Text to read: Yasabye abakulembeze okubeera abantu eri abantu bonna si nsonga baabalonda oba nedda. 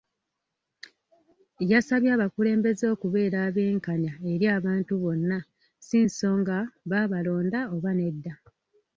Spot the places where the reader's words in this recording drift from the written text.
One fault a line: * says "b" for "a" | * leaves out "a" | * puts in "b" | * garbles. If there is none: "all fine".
* says "abenkanya" for "abantu"